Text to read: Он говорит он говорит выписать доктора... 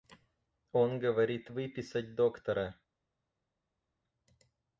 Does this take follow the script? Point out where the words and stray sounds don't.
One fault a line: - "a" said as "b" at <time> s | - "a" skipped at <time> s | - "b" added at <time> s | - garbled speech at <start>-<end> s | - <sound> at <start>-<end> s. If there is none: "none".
- "он говорит" skipped at 1.5 s